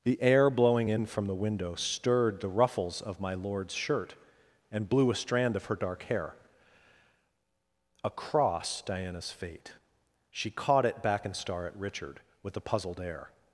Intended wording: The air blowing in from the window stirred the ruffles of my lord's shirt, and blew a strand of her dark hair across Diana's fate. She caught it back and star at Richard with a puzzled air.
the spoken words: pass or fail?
pass